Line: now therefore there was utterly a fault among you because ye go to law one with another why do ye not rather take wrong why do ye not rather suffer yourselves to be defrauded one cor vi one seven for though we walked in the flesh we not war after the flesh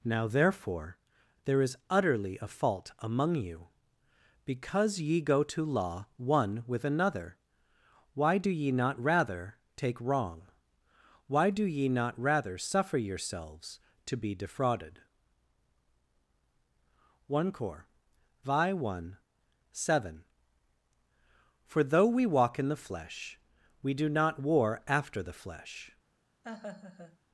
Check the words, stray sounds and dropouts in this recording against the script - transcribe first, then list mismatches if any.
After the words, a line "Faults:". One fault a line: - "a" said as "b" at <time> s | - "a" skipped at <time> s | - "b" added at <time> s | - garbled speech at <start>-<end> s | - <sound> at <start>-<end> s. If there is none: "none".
now therefore there is utterly a fault among you because ye go to law one with another why do ye not rather take wrong why do ye not rather suffer yourselves to be defrauded one cor vi one seven for though we walk in the flesh we do not war after the flesh
Faults:
- "was" said as "is" at 1.6 s
- "walked" said as "walk" at 22.3 s
- "do" added at 23.9 s
- laugh at 26.4-27.2 s